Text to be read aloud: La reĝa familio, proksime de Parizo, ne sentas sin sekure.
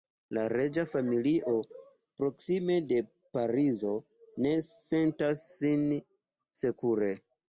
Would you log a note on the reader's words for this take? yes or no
no